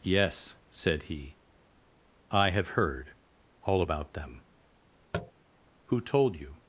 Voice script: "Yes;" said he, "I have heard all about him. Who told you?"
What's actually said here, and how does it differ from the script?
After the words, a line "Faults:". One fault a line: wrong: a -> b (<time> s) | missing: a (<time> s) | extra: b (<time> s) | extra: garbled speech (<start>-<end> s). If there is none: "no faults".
"Yes;" said he, "I have heard all about them. Who told you?"
Faults:
wrong: him -> them (4.1 s)